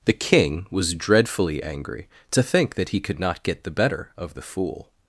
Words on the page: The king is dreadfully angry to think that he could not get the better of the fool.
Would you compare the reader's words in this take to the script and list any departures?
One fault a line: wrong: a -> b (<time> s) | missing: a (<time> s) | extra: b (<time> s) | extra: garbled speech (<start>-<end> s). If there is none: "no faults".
wrong: is -> was (0.7 s)